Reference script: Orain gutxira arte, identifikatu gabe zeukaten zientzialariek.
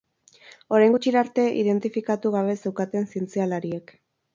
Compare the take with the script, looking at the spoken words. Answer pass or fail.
pass